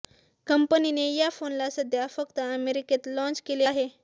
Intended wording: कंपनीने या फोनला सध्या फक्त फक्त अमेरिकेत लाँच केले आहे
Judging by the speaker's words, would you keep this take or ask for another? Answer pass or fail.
fail